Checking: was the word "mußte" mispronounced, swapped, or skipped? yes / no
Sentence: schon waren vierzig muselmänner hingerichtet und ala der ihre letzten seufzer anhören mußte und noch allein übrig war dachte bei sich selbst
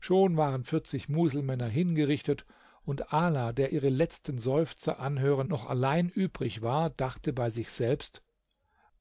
yes